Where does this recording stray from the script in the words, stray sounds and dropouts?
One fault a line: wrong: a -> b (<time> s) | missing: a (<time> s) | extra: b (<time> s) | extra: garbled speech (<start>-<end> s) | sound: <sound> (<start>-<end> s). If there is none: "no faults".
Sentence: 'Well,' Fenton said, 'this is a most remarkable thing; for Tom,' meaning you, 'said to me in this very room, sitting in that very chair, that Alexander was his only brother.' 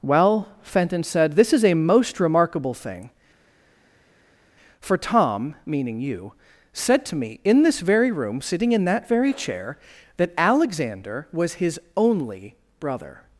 no faults